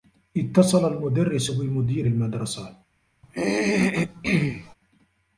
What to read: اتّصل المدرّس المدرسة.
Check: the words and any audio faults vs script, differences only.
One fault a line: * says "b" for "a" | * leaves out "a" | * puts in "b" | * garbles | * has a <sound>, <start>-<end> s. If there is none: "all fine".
* puts in "بمدير"
* has a throat clearing, 3.2-4.7 s